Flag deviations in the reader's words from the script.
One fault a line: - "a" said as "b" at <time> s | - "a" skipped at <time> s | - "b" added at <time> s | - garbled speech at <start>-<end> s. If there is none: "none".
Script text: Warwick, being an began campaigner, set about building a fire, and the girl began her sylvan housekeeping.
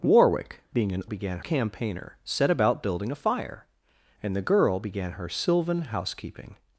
none